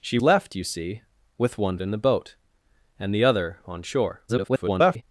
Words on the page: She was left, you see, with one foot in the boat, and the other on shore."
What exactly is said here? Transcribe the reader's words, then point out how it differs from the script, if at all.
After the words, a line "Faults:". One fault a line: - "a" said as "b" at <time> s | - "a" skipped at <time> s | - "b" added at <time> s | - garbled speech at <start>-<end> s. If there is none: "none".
She left, you see, with one in the boat, and the other on shore." [garbled]
Faults:
- "was" skipped at 0.2 s
- "foot" skipped at 1.8 s
- garbled speech at 4.3-5.0 s